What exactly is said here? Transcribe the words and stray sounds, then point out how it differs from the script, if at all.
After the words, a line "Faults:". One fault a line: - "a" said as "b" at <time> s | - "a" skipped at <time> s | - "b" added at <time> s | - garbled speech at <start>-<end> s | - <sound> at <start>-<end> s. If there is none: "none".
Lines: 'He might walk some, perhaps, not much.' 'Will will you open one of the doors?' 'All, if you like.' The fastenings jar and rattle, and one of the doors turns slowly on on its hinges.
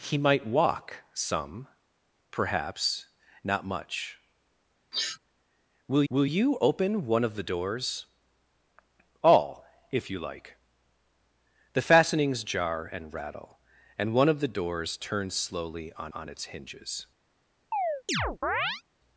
'He might walk some, perhaps, not much.' 'Will will you open one of the doors?' 'All, if you like.' The fastenings jar and rattle, and one of the doors turns slowly on on its hinges.
Faults:
- sniff at 4.9-5.2 s
- chirp at 17.7-18.8 s